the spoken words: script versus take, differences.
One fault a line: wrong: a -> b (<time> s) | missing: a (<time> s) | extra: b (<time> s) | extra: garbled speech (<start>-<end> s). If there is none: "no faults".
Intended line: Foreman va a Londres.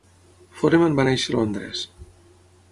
extra: néixer (1.1 s)